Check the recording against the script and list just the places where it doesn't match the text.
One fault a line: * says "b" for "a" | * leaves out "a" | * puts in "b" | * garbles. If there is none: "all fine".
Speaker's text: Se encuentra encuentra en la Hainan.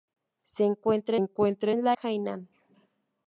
all fine